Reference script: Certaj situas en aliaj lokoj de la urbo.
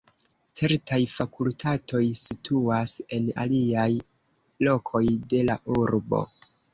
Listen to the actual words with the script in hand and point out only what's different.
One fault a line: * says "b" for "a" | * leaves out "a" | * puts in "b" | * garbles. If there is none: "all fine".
* puts in "fakultatoj"